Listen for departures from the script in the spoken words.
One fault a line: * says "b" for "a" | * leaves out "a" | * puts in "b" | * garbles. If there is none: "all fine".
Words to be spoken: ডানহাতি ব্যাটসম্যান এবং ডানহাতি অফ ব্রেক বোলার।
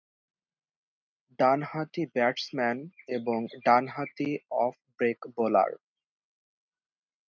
all fine